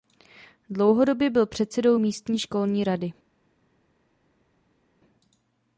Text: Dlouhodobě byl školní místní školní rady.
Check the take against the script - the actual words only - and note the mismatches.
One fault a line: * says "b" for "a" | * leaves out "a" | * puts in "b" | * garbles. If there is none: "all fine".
* says "předsedou" for "školní"